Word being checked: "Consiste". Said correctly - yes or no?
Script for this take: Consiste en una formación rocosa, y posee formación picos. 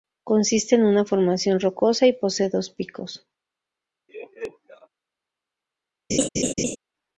yes